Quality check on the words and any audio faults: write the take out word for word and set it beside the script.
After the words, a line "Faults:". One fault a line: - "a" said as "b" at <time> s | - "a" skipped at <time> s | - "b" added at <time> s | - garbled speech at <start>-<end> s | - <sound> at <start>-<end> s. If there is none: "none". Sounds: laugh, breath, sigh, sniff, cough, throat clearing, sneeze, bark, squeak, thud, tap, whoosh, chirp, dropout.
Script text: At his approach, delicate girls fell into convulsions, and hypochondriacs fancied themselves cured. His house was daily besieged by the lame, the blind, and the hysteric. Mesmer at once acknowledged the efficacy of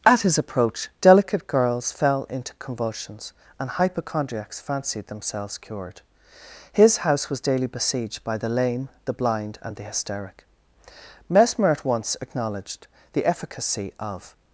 At his approach, delicate girls fell into convulsions, and hypochondriacs fancied themselves cured. His house was daily besieged by the lame, the blind, and the hysteric. Mesmer at once acknowledged the efficacy of
Faults:
none